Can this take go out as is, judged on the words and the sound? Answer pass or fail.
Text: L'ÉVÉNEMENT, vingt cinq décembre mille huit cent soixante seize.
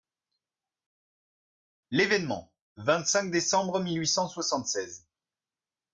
pass